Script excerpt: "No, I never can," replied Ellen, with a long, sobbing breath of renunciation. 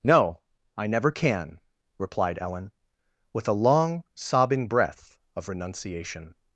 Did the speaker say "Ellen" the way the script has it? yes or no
yes